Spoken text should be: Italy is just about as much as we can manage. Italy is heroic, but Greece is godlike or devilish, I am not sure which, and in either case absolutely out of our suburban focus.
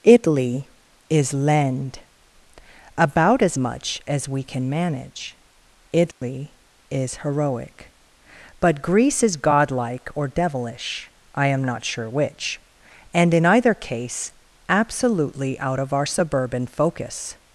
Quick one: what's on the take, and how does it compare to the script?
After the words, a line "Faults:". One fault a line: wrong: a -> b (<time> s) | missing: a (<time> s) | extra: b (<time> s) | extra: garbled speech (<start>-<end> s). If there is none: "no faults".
Italy is lend about as much as we can manage. Italy is heroic, but Greece is godlike or devilish, I am not sure which, and in either case absolutely out of our suburban focus.
Faults:
wrong: just -> lend (1.3 s)